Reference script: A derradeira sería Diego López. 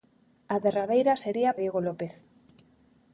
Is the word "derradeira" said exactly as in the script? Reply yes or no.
yes